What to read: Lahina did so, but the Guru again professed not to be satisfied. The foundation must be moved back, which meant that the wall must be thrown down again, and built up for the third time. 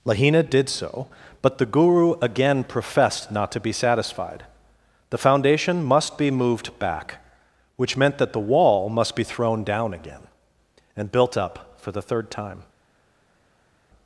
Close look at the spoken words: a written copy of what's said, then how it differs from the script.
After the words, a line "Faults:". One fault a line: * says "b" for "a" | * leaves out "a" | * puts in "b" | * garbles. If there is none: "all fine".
Lahina did so, but the Guru again professed not to be satisfied. The foundation must be moved back, which meant that the wall must be thrown down again, and built up for the third time.
Faults:
all fine